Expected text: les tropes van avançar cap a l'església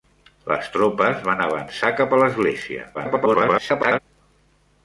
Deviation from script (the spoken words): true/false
true